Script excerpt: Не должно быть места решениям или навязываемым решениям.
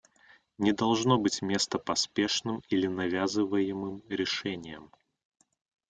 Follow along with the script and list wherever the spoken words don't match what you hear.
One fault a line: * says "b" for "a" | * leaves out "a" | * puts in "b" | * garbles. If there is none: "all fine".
* says "поспешным" for "решениям"